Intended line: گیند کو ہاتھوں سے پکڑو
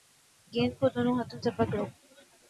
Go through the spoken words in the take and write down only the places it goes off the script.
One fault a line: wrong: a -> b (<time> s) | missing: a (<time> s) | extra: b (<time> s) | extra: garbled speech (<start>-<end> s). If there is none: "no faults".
extra: دونوں (0.9 s)